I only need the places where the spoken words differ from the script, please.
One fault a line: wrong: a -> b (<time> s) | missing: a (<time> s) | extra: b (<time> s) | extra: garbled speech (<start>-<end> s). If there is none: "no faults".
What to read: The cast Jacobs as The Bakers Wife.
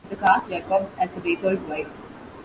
no faults